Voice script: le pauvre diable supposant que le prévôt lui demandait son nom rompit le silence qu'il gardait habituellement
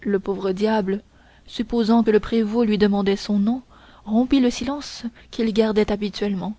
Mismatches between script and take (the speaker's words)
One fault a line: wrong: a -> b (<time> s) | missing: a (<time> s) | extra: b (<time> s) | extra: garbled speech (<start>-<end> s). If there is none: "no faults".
no faults